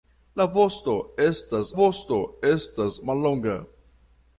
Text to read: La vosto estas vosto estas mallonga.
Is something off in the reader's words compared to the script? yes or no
no